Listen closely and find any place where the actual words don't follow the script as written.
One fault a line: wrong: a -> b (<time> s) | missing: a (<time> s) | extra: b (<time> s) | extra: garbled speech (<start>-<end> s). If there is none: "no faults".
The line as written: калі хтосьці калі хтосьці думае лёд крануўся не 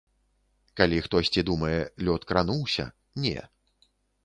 missing: калі хтосьці (1.4 s)